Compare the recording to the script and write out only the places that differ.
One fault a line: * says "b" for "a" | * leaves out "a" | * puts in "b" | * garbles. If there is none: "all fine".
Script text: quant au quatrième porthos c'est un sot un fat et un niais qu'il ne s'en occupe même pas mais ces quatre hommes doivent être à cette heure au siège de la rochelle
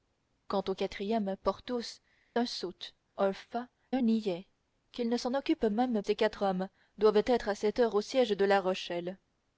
* leaves out "c'est"
* leaves out "et"
* leaves out "pas mais"